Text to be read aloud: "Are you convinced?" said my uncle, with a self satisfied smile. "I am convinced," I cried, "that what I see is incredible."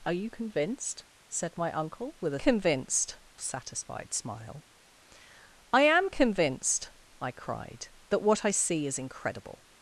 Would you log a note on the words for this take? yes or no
yes